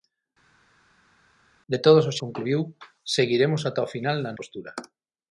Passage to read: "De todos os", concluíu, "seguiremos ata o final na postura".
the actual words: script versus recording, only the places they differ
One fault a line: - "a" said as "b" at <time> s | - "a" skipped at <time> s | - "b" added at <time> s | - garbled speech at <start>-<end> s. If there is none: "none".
none